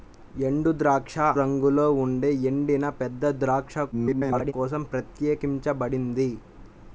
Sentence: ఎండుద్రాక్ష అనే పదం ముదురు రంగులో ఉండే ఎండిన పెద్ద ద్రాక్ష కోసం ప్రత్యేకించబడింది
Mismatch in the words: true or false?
true